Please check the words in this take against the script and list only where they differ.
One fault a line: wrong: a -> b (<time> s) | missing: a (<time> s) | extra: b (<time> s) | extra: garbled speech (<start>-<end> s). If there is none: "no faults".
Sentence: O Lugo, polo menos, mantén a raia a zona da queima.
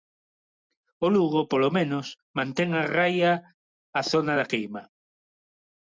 no faults